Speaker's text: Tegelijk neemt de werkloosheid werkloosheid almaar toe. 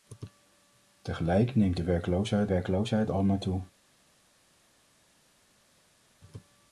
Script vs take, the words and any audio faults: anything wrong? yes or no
no